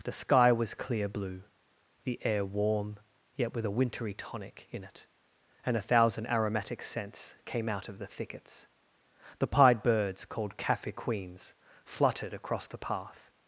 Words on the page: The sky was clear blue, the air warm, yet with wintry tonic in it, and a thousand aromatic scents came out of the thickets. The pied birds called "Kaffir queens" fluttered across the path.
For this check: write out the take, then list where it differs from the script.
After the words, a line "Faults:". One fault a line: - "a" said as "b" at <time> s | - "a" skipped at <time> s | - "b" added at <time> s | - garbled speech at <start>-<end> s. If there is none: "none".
The sky was clear blue, the air warm, yet with a wintry tonic in it, and a thousand aromatic scents came out of the thickets. The pied birds called "Kaffir queens" fluttered across the path.
Faults:
- "a" added at 3.6 s